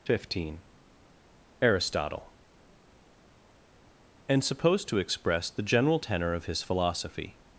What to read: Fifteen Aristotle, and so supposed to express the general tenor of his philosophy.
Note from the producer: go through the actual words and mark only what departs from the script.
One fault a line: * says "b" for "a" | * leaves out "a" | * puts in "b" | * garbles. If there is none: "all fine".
* leaves out "so"